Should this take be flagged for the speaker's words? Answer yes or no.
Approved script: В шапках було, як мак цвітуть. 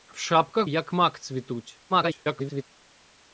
yes